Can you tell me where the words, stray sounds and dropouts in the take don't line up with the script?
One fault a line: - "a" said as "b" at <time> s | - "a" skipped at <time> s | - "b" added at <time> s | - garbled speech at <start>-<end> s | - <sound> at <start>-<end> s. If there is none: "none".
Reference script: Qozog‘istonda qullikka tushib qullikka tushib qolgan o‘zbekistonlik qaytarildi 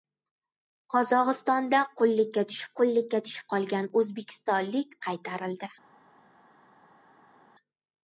none